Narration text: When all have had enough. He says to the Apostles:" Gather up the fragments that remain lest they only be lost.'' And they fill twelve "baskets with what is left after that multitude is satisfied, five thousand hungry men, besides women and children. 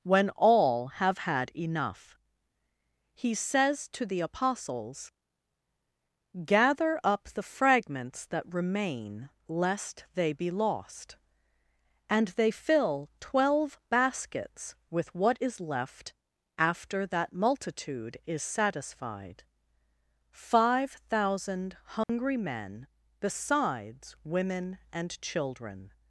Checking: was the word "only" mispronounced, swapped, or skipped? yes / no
yes